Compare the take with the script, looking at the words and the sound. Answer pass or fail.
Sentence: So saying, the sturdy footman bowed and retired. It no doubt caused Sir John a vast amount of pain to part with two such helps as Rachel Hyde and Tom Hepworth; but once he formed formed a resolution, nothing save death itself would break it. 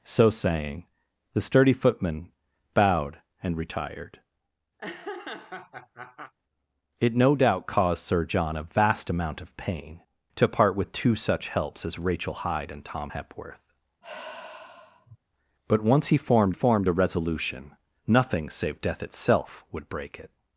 fail